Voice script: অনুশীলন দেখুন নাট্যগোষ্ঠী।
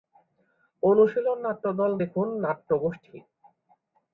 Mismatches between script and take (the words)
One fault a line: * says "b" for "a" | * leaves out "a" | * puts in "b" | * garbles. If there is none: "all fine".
* puts in "নাট্যদল"